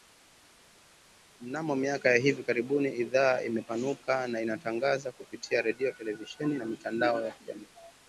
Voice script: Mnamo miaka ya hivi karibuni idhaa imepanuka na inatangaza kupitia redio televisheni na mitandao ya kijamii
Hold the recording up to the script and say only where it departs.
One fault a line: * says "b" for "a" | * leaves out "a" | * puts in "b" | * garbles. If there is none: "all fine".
all fine